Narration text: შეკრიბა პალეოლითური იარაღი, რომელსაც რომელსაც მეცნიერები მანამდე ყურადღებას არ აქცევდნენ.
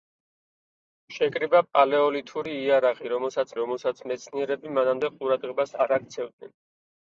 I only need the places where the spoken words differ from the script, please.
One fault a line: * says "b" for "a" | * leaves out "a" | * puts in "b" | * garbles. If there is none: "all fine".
all fine